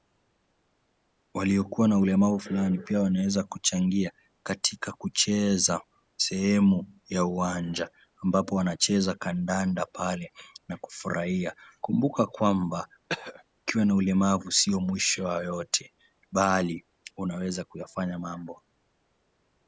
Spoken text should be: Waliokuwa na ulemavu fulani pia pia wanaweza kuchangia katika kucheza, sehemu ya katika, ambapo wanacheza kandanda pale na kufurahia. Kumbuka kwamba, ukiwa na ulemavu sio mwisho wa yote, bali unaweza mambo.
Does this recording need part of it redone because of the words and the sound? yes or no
yes